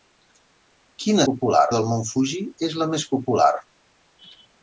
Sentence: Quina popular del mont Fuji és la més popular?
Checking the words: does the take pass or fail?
pass